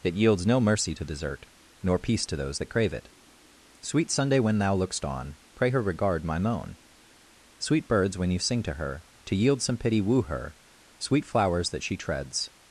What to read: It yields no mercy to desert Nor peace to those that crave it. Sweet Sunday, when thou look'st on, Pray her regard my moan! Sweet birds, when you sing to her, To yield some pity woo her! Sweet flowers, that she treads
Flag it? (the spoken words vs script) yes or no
no